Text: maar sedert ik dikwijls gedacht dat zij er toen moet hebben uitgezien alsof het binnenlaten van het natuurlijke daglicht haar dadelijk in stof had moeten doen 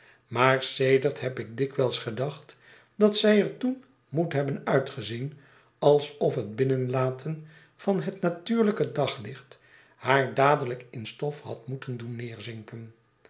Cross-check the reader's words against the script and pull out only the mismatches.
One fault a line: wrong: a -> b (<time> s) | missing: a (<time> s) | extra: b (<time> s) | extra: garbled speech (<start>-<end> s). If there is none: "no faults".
extra: heb (1.2 s)